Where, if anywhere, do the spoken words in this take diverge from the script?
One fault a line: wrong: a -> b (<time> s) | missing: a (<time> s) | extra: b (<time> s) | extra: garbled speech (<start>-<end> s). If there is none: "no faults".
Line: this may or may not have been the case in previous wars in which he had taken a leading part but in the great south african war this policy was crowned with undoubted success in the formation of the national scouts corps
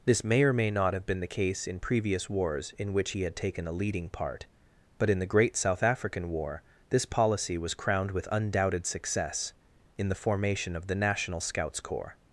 no faults